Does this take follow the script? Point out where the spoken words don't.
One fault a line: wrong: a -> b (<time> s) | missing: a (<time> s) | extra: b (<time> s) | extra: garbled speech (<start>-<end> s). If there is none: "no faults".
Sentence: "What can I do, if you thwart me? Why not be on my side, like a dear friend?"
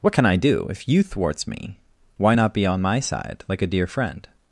wrong: thwart -> thwarts (1.0 s)